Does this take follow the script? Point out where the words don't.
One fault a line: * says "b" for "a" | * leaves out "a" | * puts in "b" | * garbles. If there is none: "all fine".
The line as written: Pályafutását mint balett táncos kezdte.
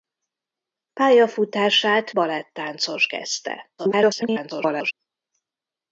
* leaves out "mint"
* garbles